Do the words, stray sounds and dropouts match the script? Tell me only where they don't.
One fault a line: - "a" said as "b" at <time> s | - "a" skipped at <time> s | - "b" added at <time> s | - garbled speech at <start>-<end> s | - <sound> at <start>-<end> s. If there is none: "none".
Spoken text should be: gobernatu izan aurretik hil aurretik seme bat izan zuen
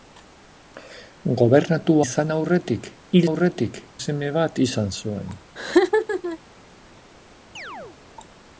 - laugh at 5.6-6.4 s
- chirp at 7.6-8.0 s